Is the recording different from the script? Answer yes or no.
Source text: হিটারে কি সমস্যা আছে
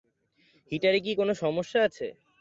yes